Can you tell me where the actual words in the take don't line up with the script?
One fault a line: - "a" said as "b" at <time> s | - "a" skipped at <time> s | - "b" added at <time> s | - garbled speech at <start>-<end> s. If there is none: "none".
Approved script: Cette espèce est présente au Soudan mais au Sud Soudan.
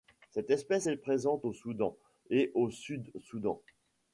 - "mais" said as "et" at 2.3 s